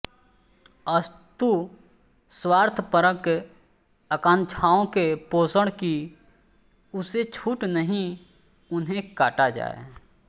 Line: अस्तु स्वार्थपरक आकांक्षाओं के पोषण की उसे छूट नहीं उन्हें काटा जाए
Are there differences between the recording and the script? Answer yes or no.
no